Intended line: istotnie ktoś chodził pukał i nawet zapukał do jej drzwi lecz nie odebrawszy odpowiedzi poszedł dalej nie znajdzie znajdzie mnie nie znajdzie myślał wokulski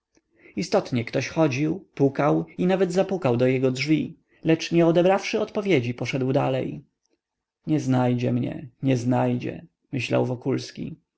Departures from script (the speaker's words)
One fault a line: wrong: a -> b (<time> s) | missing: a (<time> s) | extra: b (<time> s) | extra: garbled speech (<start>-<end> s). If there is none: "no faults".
wrong: jej -> jego (3.5 s)
missing: znajdzie (8.3 s)